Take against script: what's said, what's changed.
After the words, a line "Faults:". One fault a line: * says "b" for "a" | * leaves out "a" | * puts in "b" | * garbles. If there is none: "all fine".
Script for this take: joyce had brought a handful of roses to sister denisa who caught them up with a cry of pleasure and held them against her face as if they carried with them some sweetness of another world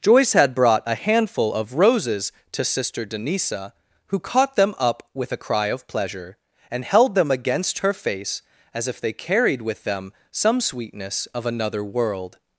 joyce had brought a handful of roses to sister denisa who caught them up with a cry of pleasure and held them against her face as if they carried with them some sweetness of another world
Faults:
all fine